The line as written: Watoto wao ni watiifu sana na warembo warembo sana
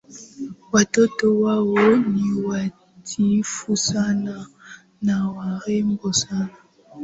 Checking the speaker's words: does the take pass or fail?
fail